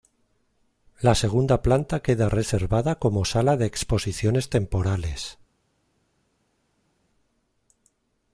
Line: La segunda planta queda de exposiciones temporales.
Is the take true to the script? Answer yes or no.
no